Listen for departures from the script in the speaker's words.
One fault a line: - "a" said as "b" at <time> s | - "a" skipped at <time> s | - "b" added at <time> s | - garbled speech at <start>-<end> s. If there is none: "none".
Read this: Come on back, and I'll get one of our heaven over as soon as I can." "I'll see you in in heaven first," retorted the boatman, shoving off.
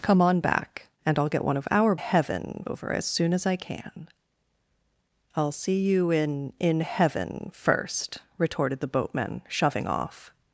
none